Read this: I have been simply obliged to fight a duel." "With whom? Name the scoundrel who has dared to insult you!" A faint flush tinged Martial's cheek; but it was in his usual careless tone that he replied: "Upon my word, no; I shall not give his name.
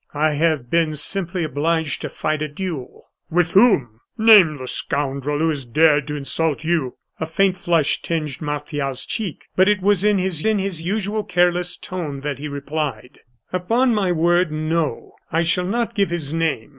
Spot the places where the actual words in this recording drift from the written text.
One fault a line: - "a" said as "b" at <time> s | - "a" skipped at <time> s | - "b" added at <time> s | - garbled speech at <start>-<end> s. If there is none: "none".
- "in his" added at 10.4 s